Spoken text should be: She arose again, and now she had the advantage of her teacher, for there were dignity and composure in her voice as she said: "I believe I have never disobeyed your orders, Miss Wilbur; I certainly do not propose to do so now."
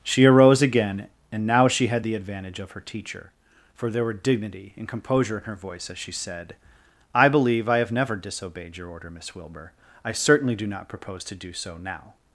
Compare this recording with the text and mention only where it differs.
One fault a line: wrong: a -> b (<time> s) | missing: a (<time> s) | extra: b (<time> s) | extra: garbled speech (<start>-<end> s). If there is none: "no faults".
wrong: orders -> order (8.9 s)